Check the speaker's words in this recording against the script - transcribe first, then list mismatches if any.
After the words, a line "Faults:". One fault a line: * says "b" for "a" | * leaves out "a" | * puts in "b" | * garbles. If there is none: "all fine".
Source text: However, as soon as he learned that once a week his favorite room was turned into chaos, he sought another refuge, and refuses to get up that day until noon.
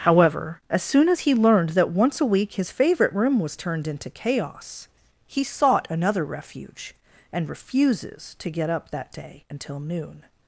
However, as soon as he learned that once a week his favorite room was turned into chaos, he sought another refuge, and refuses to get up that day until noon.
Faults:
all fine